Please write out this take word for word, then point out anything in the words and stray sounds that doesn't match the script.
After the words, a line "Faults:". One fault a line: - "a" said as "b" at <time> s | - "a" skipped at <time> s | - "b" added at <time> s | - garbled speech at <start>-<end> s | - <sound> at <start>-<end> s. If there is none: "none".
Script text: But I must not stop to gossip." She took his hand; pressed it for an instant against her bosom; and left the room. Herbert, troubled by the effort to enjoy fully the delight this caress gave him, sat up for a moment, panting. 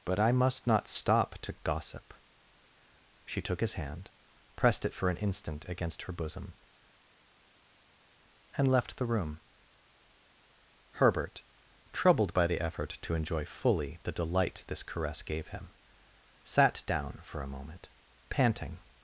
But I must not stop to gossip." She took his hand; pressed it for an instant against her bosom; and left the room. Herbert, troubled by the effort to enjoy fully the delight this caress gave him, sat down for a moment, panting.
Faults:
- "up" said as "down" at 16.9 s